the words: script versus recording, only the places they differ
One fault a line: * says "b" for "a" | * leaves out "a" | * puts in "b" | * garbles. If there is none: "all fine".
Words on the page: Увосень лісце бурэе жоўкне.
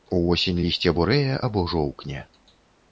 * puts in "або"